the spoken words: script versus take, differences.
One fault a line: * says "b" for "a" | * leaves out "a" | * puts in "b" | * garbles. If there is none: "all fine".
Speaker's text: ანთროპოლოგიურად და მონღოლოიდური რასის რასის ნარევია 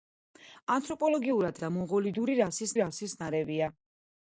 all fine